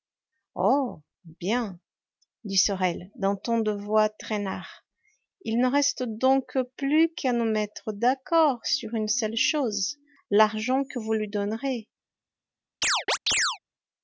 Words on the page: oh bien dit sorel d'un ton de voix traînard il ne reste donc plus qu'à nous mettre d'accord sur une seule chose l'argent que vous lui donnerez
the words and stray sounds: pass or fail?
fail